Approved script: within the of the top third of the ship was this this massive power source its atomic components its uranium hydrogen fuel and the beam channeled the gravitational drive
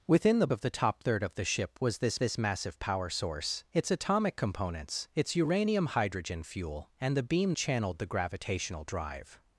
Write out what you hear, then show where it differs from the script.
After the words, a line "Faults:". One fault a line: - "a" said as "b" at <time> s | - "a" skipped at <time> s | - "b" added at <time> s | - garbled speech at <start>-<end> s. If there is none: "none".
within the of the top third of the ship was this this massive power source its atomic components its uranium hydrogen fuel and the beam channeled the gravitational drive
Faults:
none